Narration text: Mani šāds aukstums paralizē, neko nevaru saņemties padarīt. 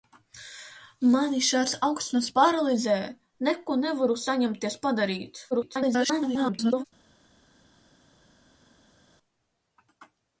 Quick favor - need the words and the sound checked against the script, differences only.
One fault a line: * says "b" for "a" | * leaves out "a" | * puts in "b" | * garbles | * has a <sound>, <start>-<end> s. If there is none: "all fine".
* garbles